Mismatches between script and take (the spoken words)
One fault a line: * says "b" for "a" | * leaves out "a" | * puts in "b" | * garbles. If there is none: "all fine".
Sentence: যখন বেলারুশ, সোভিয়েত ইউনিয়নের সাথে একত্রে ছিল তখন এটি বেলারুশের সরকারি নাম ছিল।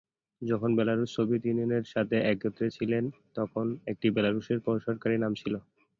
all fine